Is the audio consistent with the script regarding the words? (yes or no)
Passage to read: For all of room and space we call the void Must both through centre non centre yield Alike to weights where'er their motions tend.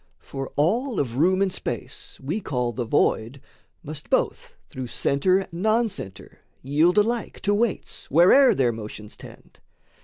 yes